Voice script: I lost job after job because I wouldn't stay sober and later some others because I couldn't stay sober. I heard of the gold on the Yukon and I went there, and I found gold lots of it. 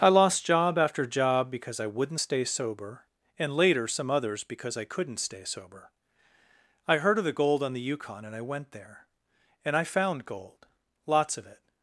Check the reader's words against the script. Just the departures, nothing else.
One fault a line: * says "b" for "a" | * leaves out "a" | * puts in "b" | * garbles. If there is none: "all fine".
all fine